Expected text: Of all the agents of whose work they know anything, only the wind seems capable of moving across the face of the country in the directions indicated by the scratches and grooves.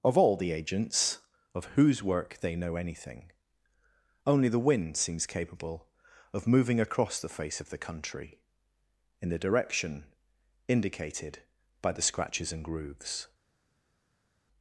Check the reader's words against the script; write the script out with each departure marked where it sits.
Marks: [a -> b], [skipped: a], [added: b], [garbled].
Of all the agents of whose work they know anything, only the wind seems capable of moving across the face of the country in the [directions -> direction] indicated by the scratches and grooves.